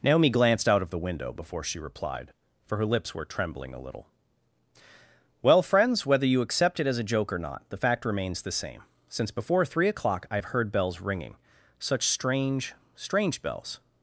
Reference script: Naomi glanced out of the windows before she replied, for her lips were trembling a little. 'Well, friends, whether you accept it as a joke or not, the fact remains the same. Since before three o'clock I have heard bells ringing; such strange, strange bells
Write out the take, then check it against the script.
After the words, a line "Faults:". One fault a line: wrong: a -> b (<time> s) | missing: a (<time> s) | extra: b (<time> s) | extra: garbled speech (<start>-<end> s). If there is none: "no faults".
Naomi glanced out of the window before she replied, for her lips were trembling a little. 'Well, friends, whether you accept it as a joke or not, the fact remains the same. Since before three o'clock I have heard bells ringing; such strange, strange bells
Faults:
wrong: windows -> window (1.0 s)